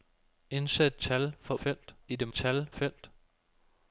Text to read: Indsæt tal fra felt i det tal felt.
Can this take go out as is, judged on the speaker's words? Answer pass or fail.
pass